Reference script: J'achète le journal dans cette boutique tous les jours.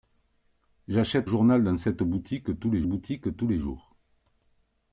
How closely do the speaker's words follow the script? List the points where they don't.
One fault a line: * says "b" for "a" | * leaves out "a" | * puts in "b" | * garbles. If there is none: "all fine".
* leaves out "le"
* puts in "boutique tous les"